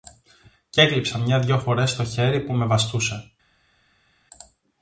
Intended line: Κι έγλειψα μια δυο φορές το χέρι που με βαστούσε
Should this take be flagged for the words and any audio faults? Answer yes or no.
no